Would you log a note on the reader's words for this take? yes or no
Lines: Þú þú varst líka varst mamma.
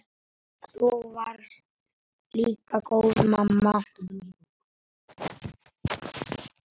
yes